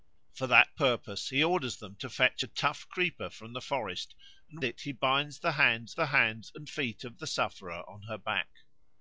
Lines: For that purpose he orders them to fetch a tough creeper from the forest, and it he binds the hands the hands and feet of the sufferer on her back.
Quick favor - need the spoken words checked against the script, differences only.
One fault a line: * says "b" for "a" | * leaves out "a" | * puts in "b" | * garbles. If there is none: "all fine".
all fine